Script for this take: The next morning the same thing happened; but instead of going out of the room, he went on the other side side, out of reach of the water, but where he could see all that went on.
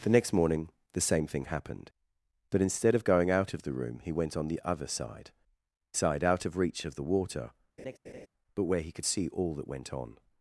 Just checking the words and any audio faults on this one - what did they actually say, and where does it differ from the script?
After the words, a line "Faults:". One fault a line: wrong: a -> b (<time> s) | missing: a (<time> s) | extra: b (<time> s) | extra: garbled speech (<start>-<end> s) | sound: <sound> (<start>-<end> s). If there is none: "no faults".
The next morning the same thing happened; but instead of going out of the room, he went on the other side side, out of reach of the water, but where he could see all that went on.
Faults:
sound: laugh (7.8-8.3 s)